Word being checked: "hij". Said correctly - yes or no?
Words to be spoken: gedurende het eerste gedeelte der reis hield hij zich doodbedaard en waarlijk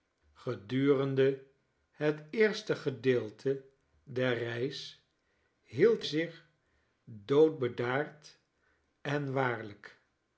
no